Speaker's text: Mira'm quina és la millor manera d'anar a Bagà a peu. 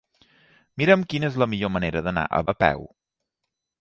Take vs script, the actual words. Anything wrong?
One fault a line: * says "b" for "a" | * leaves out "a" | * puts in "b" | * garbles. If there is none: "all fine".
* leaves out "Bagà"